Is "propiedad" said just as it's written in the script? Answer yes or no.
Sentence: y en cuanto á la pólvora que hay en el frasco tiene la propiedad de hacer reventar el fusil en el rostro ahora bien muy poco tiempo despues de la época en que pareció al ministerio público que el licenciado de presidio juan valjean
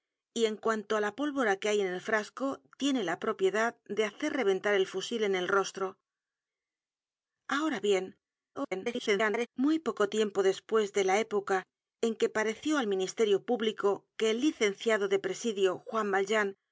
yes